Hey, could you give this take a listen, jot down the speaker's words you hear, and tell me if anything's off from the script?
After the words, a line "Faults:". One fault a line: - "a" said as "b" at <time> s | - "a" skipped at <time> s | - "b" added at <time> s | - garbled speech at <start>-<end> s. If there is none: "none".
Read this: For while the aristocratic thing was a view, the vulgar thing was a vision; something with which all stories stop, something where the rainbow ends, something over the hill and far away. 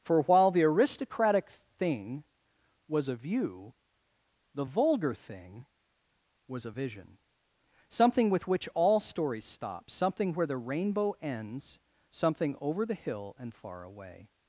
For while the aristocratic thing was a view, the vulgar thing was a vision; something with which all stories stop, something where the rainbow ends, something over the hill and far away.
Faults:
none